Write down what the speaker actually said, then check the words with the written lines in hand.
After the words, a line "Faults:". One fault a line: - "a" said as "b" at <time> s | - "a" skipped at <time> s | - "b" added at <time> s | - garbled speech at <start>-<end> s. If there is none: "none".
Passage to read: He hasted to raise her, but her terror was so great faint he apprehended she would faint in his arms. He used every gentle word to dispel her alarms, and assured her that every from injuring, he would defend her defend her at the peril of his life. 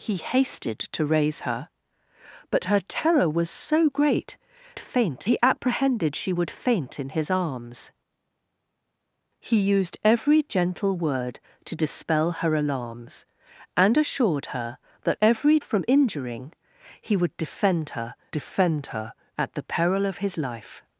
He hasted to raise her, but her terror was so great faint he apprehended she would faint in his arms. He used every gentle word to dispel her alarms, and assured her that every from injuring, he would defend her defend her at the peril of his life.
Faults:
none